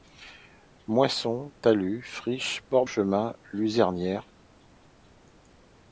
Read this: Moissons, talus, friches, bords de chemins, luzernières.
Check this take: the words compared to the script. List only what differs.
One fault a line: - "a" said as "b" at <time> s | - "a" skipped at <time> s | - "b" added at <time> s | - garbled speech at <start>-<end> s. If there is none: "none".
- "de" skipped at 2.9 s